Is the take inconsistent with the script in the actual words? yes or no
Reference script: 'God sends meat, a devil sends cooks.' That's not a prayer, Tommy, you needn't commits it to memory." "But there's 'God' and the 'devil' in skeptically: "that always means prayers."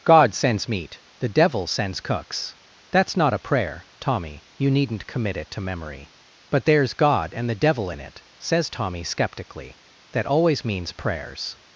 yes